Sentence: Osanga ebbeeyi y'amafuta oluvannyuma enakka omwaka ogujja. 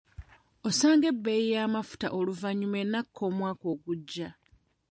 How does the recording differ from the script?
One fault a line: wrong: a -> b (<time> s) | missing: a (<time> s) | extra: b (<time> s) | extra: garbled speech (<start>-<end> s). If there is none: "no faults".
no faults